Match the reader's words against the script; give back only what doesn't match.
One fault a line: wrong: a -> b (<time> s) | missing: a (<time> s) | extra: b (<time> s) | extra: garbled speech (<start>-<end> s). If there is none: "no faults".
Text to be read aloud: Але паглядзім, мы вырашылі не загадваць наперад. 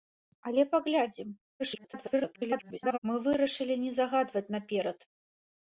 extra: garbled speech (1.6-3.0 s)